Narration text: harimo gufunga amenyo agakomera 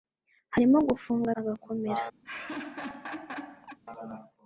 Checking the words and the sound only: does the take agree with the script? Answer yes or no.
no